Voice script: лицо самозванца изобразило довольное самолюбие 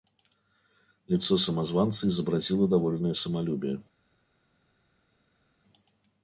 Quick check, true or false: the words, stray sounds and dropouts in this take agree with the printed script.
true